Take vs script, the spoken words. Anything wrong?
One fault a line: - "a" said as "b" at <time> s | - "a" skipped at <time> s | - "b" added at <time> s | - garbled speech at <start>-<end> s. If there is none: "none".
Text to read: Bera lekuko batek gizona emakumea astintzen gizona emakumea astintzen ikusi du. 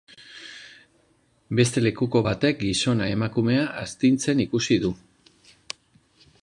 - "Bera" said as "Beste" at 1.6 s
- "gizona emakumea astintzen" skipped at 4.4 s